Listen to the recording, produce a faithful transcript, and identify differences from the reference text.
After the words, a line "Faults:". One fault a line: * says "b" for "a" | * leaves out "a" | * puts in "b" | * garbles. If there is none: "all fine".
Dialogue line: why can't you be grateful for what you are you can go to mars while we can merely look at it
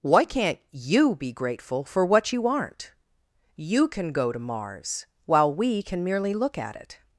why can't you be grateful for what you aren't you can go to mars while we can merely look at it
Faults:
* says "aren't" for "are"